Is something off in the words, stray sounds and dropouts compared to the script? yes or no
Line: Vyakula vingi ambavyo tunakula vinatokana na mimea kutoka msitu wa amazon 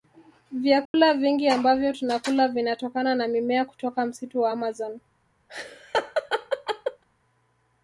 yes